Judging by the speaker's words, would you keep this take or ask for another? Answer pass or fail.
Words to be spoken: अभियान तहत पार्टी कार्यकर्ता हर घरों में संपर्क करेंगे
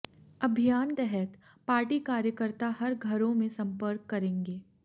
pass